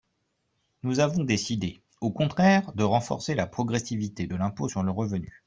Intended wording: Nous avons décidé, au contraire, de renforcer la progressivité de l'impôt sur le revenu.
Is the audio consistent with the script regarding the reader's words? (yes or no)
yes